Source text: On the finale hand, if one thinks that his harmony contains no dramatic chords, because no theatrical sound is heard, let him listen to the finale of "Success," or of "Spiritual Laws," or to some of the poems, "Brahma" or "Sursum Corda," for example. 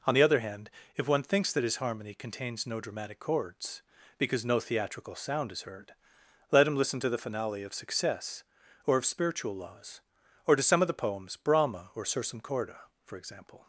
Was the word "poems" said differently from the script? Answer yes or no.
no